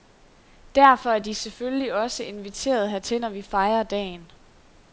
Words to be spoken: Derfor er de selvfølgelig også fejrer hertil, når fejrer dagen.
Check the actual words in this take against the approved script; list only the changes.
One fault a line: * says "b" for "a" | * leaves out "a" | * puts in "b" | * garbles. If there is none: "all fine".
* says "inviteret" for "fejrer"
* puts in "vi"